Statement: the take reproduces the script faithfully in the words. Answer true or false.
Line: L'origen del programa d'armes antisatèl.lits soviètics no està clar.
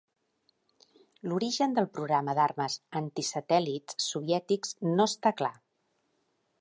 true